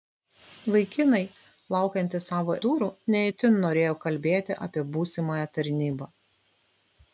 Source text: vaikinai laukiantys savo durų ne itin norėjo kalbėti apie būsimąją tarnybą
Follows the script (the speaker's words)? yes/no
yes